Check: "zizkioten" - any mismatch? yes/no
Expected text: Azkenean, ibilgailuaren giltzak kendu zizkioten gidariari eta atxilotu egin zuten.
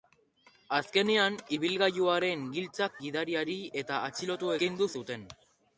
yes